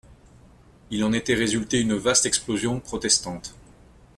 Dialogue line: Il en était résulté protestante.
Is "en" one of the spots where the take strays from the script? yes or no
no